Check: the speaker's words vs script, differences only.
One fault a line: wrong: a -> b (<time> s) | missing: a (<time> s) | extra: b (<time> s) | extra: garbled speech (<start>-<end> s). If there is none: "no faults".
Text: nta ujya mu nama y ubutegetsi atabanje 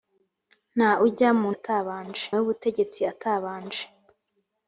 wrong: nama -> atabanje (1.6 s)